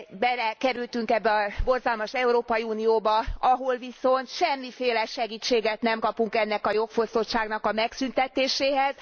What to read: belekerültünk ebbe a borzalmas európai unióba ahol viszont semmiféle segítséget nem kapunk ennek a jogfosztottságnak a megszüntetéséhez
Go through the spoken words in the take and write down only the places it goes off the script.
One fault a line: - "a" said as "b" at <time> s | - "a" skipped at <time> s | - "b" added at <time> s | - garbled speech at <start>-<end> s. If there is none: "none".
none